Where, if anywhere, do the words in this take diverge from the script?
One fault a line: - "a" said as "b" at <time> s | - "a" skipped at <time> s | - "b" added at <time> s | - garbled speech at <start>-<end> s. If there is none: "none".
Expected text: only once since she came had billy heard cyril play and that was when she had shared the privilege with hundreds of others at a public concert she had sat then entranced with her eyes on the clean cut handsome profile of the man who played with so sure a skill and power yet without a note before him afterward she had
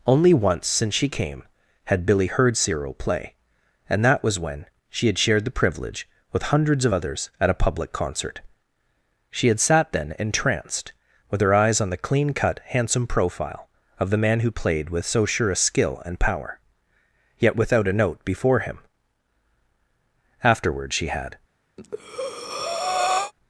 none